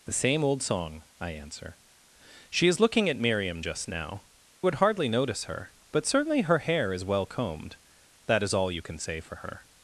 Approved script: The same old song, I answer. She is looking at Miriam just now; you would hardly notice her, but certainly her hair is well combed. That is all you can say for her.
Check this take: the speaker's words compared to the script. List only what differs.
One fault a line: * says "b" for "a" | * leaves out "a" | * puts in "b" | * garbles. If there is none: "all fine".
* leaves out "you"